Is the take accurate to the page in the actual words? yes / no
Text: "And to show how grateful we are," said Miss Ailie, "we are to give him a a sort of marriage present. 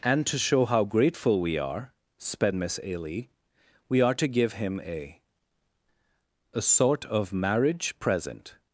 no